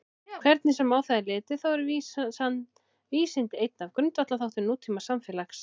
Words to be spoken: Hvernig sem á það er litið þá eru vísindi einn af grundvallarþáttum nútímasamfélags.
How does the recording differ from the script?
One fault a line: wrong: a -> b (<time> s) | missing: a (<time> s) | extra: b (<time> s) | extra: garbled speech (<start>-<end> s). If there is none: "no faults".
no faults